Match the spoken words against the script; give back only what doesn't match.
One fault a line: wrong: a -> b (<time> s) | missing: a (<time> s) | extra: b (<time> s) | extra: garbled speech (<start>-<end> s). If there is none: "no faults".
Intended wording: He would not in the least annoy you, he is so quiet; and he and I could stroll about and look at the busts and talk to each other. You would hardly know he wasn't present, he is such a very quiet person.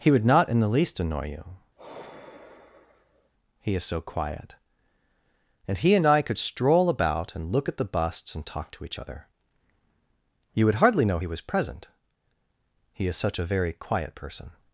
wrong: wasn't -> was (11.3 s)